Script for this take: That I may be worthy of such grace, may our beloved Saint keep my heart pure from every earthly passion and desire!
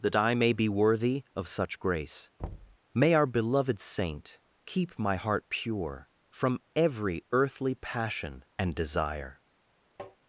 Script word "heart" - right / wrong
right